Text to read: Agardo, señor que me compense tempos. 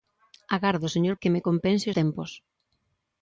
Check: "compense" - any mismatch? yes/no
no